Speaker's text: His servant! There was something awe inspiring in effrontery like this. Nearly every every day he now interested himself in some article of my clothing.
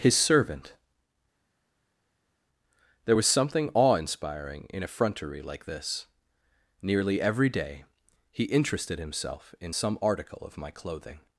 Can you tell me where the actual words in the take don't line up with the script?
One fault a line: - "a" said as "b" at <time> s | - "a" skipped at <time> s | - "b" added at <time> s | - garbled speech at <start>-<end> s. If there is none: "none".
- "every" skipped at 7.5 s
- "now" skipped at 8.4 s